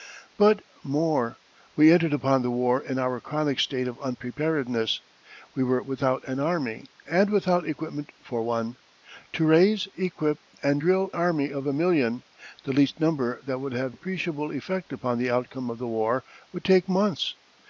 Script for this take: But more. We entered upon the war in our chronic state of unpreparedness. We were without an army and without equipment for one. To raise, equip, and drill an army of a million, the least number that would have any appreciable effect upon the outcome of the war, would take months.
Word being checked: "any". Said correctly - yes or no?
no